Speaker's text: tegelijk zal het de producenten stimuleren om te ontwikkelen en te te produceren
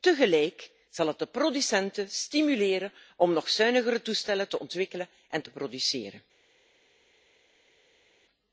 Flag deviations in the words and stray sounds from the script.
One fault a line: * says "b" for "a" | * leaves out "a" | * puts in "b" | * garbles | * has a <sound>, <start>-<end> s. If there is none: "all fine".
* puts in "nog zuinigere toestellen"
* leaves out "te"